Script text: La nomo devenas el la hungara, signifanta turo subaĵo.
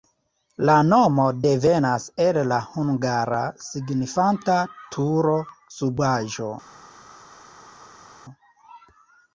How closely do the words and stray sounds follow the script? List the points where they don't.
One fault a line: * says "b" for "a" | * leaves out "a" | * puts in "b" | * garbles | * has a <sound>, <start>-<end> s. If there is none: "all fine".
all fine